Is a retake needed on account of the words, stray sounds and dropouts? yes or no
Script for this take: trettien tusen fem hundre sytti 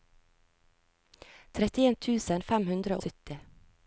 no